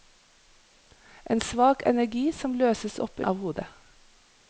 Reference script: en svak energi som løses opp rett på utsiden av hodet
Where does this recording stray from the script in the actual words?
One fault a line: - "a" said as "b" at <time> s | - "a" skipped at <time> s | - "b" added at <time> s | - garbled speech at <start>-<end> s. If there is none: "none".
- "rett på utsiden" skipped at 3.2 s